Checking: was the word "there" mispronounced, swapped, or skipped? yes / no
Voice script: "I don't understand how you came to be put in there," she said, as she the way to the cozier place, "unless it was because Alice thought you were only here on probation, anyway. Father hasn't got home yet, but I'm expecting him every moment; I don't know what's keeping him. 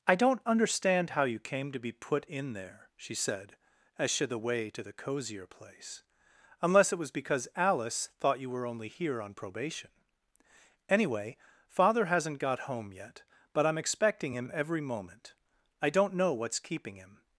no